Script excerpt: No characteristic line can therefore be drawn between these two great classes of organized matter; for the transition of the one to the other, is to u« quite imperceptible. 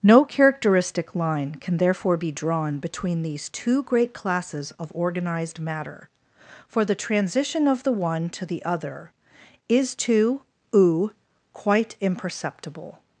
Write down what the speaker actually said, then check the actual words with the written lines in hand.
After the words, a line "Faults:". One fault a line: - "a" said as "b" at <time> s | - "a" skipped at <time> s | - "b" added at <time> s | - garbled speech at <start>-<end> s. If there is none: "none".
No characteristic line can therefore be drawn between these two great classes of organized matter; for the transition of the one to the other, is to u« quite imperceptible.
Faults:
none